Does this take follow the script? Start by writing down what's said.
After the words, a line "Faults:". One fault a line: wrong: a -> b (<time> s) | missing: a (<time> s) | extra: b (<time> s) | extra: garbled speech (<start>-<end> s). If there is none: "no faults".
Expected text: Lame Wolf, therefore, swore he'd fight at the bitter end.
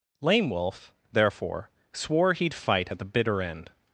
Lame Wolf, therefore, swore he'd fight at the bitter end.
Faults:
no faults